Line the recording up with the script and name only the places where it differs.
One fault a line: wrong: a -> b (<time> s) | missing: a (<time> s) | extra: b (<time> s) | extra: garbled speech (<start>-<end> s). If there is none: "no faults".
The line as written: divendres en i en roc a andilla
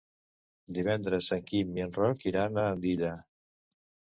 extra: quim (1.5 s)
extra: iran (2.3 s)